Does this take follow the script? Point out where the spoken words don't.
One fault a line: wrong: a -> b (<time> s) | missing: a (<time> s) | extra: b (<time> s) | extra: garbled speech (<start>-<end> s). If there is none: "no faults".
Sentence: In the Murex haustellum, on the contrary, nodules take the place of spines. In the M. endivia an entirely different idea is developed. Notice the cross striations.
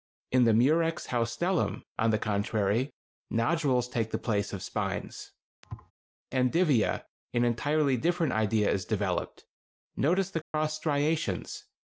missing: In the M (5.3 s)